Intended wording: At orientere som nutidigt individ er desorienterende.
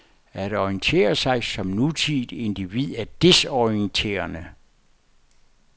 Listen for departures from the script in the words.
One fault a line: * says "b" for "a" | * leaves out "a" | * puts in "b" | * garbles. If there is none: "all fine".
* puts in "sig"